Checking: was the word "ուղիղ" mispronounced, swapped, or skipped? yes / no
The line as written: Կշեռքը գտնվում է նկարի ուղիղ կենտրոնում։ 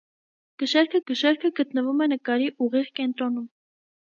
no